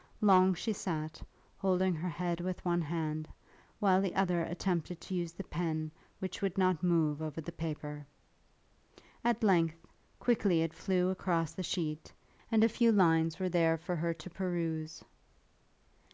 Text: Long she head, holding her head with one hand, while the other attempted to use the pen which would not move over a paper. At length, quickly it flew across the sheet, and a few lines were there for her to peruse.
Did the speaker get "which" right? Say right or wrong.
right